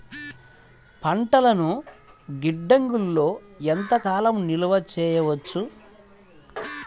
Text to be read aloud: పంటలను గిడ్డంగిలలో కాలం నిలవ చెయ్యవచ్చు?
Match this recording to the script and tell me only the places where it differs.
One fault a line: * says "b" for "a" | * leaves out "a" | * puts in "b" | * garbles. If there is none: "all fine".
* puts in "ఎంత"